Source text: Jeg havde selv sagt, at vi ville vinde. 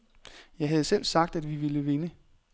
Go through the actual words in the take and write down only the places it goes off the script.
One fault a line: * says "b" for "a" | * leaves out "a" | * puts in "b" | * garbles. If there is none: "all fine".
all fine